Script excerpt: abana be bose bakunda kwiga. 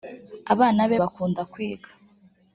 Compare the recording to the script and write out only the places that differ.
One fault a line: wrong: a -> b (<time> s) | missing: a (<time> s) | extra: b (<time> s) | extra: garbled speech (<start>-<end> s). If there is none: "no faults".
missing: bose (1.0 s)